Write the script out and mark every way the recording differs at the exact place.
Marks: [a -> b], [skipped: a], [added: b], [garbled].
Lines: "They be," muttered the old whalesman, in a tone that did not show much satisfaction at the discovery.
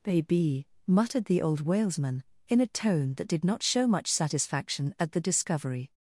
["They be," -> Baby] muttered the old whalesman, in a tone that did not show much satisfaction at the discovery.